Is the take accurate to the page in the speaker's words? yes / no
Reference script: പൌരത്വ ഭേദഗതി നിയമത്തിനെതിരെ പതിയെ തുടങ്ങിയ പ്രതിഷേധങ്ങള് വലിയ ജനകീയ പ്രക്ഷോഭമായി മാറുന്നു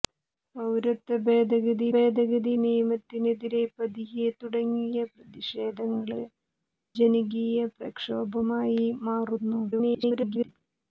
no